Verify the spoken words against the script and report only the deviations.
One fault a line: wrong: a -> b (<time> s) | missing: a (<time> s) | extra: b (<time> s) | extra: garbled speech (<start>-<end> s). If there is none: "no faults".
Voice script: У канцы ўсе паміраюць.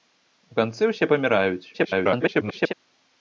extra: garbled speech (1.7-2.7 s)